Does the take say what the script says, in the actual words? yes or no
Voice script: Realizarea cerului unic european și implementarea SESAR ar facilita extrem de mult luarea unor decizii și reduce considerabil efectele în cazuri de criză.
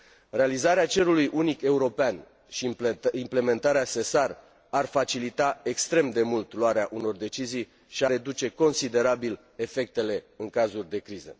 yes